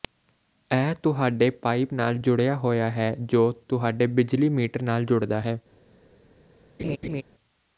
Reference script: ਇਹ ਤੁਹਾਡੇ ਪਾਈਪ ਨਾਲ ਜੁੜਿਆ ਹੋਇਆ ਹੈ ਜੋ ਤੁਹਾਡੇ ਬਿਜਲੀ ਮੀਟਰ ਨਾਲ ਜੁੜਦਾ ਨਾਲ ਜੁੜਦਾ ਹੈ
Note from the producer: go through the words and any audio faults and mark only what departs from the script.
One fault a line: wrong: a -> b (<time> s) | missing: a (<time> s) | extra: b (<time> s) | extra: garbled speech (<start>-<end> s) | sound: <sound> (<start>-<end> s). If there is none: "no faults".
missing: ਨਾਲ ਜੁੜਦਾ (5.4 s)
sound: laugh (6.8-7.2 s)